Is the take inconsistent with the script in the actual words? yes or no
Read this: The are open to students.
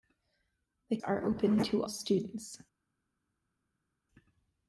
no